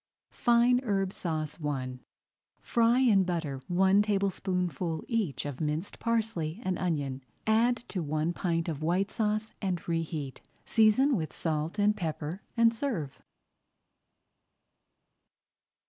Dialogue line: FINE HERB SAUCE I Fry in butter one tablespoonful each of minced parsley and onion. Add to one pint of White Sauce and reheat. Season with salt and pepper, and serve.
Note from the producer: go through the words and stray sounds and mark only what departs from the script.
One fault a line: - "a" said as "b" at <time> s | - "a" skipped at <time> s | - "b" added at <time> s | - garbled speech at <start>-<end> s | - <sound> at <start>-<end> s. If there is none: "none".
none